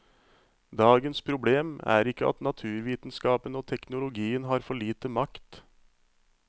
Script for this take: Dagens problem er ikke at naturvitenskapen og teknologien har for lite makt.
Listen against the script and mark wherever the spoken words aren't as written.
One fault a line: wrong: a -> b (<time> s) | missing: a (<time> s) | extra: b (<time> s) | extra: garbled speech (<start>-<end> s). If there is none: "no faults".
no faults